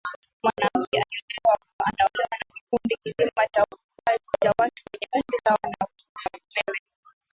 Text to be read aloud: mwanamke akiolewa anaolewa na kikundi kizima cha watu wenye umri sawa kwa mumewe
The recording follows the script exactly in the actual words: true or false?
false